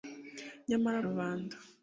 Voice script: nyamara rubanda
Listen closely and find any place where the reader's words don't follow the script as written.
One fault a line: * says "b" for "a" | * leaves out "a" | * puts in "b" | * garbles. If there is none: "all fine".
all fine